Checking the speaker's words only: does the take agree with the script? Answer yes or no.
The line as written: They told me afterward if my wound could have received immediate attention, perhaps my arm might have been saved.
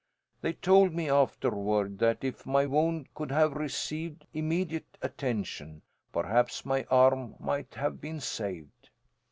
no